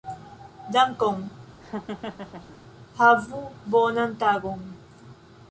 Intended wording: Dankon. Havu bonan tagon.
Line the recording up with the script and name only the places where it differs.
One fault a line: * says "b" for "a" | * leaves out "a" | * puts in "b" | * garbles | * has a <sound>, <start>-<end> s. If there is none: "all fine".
* has a laugh, 1.6-2.6 s